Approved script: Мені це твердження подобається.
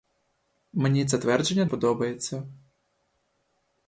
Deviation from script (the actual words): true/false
false